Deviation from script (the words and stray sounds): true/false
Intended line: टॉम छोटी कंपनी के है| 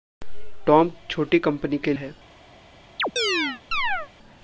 true